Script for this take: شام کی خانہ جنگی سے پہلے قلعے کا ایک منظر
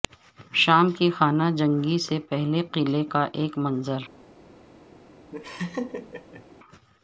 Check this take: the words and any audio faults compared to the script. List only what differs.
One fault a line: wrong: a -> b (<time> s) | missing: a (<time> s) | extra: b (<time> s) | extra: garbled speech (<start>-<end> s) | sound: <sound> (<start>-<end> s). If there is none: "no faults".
sound: laugh (5.3-6.4 s)